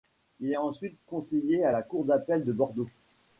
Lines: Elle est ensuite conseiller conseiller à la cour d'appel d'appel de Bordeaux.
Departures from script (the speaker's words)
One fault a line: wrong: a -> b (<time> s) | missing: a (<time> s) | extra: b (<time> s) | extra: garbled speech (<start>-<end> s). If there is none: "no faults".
wrong: Elle -> Il (0.4 s)
missing: conseiller (1.6 s)
missing: d'appel (2.4 s)